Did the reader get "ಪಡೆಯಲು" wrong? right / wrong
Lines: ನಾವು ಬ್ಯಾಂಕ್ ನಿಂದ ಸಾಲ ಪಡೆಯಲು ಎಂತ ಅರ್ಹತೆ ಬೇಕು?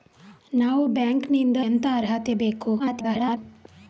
wrong